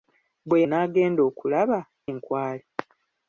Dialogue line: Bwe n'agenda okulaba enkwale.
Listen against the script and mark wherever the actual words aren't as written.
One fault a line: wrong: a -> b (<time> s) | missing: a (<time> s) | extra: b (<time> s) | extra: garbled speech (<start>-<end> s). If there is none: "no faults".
no faults